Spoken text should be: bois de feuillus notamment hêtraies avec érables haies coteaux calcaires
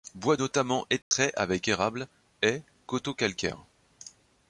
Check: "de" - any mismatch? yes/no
yes